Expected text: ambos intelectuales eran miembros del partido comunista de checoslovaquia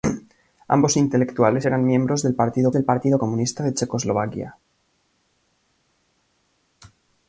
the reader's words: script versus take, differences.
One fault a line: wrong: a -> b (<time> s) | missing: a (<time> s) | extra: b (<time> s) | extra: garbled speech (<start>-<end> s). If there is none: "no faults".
extra: del partido (2.7 s)